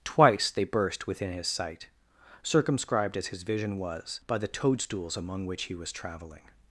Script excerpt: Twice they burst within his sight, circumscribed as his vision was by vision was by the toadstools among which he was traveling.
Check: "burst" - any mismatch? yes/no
no